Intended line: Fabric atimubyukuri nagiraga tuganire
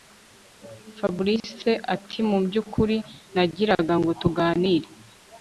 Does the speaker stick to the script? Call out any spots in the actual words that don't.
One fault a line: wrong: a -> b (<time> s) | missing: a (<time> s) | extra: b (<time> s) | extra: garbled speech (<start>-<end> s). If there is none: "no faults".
extra: ngo (4.0 s)